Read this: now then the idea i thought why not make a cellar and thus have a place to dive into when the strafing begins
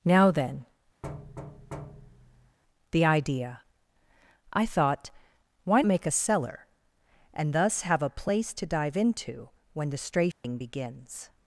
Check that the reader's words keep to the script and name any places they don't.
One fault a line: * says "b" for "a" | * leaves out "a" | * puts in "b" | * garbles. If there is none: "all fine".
* leaves out "not"